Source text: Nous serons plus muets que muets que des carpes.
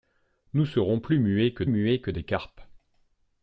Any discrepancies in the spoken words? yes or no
no